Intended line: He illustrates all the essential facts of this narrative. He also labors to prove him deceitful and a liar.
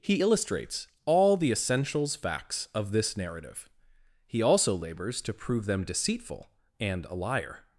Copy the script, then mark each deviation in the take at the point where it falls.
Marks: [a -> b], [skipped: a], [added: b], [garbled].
He illustrates all the [essential -> essentials] facts of this narrative. He also labors to prove [him -> them] deceitful and a liar.